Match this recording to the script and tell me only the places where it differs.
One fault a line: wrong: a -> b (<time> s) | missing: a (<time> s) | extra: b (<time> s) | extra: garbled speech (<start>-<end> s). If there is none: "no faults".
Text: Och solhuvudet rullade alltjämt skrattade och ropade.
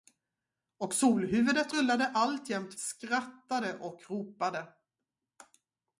no faults